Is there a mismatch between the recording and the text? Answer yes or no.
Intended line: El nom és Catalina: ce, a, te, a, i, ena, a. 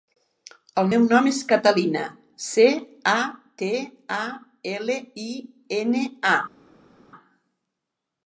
yes